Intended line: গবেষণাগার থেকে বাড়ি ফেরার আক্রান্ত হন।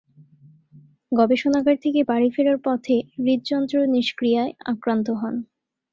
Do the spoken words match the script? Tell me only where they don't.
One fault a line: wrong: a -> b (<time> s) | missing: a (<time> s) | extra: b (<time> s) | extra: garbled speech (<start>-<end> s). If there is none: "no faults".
extra: পথে হৃদযন্ত্র নিষ্ক্রিয়ায় (2.6 s)